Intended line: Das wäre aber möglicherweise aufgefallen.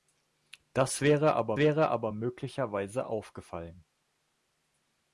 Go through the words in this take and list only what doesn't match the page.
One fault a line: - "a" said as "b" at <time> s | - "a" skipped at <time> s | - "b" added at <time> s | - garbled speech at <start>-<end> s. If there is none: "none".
- "wäre aber" added at 1.6 s